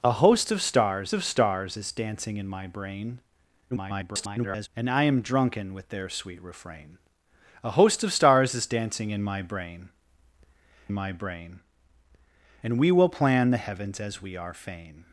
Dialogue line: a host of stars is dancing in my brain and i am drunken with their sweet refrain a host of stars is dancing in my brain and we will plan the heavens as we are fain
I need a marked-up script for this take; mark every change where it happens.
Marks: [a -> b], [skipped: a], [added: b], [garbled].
a host of stars [added: of stars] is dancing in my brain [garbled] and i am drunken with their sweet refrain a host of stars is dancing in my brain [added: my brain] and we will plan the heavens as we are fain